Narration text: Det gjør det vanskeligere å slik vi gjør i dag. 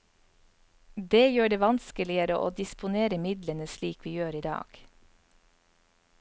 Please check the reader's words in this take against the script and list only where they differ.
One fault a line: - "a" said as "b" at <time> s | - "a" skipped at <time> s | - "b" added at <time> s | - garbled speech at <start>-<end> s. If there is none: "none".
- "disponere midlene" added at 2.6 s